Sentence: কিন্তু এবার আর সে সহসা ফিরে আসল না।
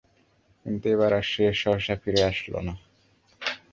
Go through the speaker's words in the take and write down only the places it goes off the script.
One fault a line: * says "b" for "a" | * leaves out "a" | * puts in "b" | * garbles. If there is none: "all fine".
all fine